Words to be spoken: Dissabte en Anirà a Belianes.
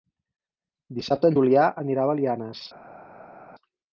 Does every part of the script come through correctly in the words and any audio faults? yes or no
no